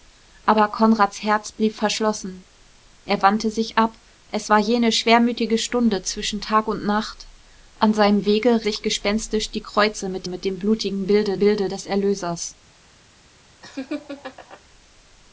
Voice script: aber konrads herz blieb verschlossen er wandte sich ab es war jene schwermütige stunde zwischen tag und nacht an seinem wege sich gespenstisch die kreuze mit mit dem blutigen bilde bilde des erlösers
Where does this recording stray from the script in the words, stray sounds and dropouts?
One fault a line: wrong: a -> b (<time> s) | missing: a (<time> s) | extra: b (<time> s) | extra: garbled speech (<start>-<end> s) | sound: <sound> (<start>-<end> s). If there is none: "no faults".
sound: laugh (13.6-14.6 s)